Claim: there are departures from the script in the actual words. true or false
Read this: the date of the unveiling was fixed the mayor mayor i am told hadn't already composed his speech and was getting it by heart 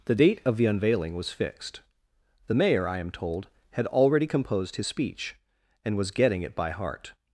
true